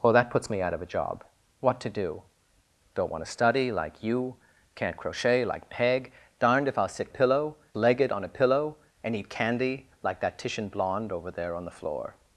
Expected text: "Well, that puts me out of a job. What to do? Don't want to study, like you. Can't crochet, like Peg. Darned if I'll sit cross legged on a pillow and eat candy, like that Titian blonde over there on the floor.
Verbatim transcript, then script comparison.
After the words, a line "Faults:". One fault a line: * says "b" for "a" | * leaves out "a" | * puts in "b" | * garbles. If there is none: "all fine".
"Well, that puts me out of a job. What to do? Don't want to study, like you. Can't crochet, like Peg. Darned if I'll sit pillow legged on a pillow and eat candy, like that Titian blonde over there on the floor.
Faults:
* says "pillow" for "cross"